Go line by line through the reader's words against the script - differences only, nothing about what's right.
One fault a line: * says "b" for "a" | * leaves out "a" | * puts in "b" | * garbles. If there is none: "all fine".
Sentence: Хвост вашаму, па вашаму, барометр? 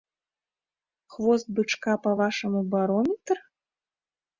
* says "бычка" for "вашаму"